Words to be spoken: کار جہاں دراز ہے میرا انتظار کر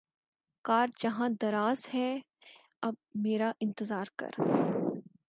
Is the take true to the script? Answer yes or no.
no